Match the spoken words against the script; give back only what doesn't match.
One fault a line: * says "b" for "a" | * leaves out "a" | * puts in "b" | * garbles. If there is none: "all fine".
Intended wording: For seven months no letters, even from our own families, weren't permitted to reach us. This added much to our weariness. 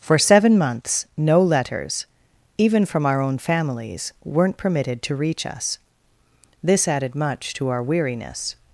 all fine